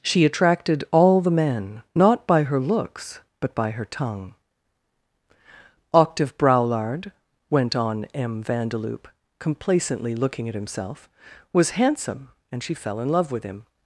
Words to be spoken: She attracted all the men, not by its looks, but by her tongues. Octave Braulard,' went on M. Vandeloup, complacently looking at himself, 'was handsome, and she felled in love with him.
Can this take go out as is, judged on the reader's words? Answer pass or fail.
fail